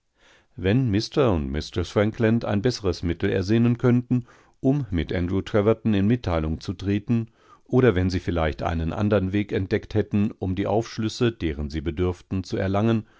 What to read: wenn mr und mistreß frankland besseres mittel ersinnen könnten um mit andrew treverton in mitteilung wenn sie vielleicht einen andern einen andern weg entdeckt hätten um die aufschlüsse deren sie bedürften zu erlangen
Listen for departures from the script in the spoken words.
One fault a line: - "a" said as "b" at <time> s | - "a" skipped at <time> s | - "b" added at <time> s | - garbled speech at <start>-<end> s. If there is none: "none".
- "ein" added at 2.4 s
- "zu treten oder" added at 6.6 s
- "einen andern" skipped at 9.3 s